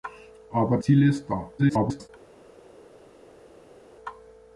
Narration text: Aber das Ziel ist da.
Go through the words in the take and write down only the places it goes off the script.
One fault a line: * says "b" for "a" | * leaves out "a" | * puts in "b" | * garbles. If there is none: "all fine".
* leaves out "das"
* garbles